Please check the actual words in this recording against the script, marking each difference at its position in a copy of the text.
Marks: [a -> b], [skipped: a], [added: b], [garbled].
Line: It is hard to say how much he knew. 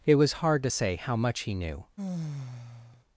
It [is -> was] hard to say how much he knew.